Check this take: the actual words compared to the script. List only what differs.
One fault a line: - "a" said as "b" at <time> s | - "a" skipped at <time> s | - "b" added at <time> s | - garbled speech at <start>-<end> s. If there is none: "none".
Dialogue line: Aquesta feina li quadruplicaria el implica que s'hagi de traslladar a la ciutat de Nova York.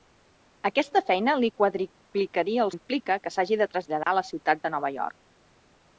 none